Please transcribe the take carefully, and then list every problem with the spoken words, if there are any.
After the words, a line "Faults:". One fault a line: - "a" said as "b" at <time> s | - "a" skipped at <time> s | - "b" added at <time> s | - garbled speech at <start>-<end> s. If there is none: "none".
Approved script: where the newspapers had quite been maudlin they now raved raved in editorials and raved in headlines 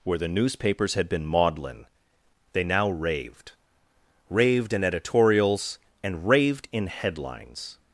where the newspapers had been maudlin they now raved raved in editorials and raved in headlines
Faults:
- "quite" skipped at 1.1 s